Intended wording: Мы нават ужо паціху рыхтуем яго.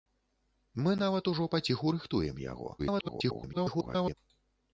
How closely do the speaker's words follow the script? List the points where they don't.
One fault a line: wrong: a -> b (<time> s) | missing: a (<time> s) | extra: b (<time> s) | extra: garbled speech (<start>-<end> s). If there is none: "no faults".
extra: garbled speech (2.8-4.1 s)